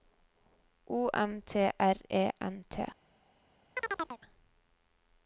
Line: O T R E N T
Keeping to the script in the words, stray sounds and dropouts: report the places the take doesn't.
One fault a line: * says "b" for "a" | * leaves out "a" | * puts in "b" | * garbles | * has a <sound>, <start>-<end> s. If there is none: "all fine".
* puts in "M"
* has a chirp, 3.8-4.2 s